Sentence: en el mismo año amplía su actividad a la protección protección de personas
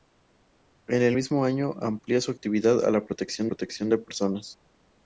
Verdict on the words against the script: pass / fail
pass